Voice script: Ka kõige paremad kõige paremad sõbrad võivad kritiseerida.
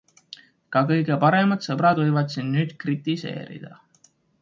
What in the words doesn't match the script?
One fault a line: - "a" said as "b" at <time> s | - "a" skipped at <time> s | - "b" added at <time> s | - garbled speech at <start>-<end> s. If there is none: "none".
- "kõige paremad sõbrad võivad" said as "sõbrad võivad sind nüüd" at 1.7 s